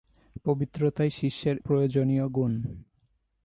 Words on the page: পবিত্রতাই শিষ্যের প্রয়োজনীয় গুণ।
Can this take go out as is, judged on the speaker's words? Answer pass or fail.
pass